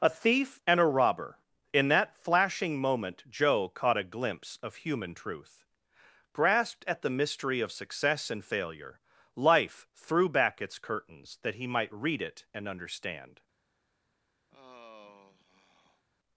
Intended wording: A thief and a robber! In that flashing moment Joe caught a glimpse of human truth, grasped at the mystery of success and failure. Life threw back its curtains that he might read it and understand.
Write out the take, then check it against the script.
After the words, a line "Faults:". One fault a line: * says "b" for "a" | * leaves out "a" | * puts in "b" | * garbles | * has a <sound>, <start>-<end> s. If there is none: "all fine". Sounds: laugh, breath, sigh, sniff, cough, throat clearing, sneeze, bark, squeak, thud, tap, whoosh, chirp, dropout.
A thief and a robber! In that flashing moment Joe caught a glimpse of human truth, grasped at the mystery of success and failure. Life threw back its curtains that he might read it and understand.
Faults:
* has a sigh, 14.5-16.0 s